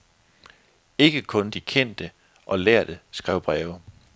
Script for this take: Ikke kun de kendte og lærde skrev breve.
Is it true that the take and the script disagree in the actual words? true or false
false